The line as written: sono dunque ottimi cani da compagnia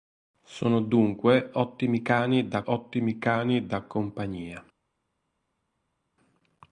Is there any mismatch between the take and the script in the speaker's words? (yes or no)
yes